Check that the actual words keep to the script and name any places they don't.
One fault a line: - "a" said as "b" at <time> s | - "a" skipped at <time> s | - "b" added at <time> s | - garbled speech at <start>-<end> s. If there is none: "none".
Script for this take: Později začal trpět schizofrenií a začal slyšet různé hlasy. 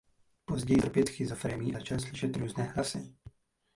- "začal" skipped at 0.8 s
- "a" skipped at 1.7 s